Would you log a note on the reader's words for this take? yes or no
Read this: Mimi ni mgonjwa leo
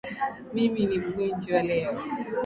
no